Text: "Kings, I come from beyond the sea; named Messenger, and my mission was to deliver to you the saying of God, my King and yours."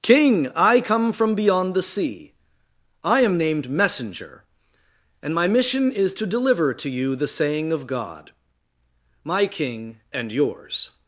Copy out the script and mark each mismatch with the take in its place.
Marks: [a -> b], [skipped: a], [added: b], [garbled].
["Kings, -> King] I come from beyond the sea; [added: I am] named Messenger, and my mission [was -> is] to deliver to you the saying of God, my King and yours."